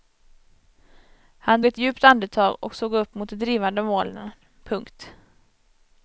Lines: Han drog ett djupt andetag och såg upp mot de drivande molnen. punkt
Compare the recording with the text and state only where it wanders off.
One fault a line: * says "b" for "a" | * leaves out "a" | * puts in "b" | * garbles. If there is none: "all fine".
* leaves out "drog"